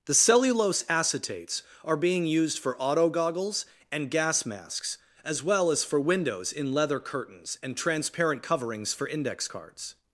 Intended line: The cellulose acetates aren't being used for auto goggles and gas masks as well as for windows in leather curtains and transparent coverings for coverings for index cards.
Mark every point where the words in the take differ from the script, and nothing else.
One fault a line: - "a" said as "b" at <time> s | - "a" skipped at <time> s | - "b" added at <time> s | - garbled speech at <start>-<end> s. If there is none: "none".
- "aren't" said as "are" at 1.8 s
- "coverings for" skipped at 9.1 s